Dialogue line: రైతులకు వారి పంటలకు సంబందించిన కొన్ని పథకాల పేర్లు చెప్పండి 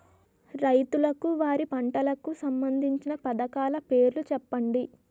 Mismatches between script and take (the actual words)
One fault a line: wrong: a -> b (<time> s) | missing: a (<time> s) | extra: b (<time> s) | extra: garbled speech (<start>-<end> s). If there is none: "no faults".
missing: కొన్ని (3.1 s)